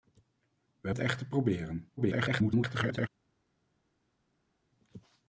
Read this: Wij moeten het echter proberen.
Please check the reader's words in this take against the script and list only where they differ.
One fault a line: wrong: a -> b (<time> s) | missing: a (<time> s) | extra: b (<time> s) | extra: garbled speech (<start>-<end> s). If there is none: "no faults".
missing: moeten (0.9 s)
extra: garbled speech (2.0-3.1 s)